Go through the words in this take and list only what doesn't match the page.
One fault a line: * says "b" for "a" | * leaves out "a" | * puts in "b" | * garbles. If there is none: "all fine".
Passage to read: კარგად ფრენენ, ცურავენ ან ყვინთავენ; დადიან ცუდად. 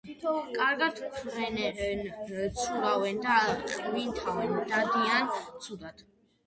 * says "და" for "ან"